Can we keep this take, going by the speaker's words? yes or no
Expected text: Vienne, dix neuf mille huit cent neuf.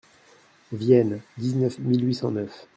yes